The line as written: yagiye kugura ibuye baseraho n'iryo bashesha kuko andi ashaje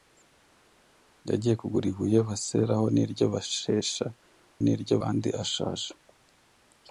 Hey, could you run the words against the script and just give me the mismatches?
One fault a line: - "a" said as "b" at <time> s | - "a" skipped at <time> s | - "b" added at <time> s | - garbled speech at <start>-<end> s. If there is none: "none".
- "kuko" said as "n'iryo" at 4.6 s